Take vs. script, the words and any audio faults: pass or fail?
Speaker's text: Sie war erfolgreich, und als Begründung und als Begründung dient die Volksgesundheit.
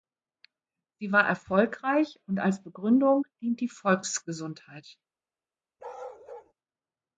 fail